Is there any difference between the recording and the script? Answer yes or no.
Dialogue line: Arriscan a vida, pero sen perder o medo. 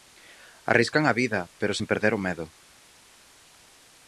no